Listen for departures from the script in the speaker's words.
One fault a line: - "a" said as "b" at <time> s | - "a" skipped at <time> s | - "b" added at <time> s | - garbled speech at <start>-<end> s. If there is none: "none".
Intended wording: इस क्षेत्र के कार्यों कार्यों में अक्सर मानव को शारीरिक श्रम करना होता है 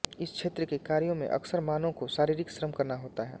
- "कार्यों" skipped at 1.1 s